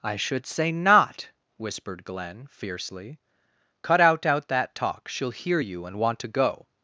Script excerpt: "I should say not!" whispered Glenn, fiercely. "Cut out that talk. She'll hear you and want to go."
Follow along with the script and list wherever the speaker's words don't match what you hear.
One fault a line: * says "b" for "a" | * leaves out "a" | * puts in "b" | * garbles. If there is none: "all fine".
* puts in "out"